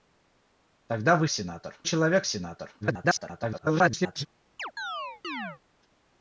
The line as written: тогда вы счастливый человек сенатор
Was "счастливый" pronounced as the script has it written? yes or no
no